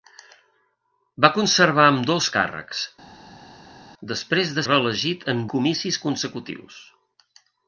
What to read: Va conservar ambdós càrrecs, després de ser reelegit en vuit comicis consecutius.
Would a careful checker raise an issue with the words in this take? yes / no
yes